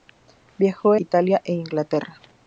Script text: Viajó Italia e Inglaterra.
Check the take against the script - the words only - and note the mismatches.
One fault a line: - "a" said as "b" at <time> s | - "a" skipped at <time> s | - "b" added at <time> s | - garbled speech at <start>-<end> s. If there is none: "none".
none